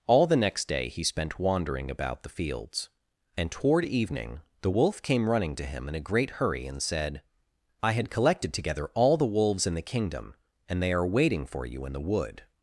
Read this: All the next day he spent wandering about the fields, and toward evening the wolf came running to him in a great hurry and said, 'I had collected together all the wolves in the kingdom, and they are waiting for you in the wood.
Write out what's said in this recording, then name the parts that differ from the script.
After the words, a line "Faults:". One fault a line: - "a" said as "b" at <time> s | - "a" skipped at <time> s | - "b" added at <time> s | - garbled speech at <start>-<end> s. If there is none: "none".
All the next day he spent wandering about the fields, and toward evening the wolf came running to him in a great hurry and said, 'I had collected together all the wolves in the kingdom, and they are waiting for you in the wood.
Faults:
none